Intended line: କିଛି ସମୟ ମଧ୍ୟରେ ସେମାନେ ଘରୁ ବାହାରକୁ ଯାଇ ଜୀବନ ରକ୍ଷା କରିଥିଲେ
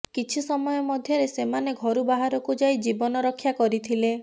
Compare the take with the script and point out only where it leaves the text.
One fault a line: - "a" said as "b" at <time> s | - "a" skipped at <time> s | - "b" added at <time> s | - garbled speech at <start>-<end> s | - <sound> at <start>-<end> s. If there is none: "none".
none